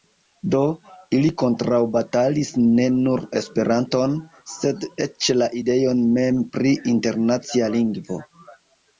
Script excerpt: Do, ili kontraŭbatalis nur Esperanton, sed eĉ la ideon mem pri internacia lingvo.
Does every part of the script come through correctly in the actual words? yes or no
no